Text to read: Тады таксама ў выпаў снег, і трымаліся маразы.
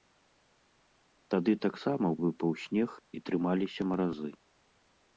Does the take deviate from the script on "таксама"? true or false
false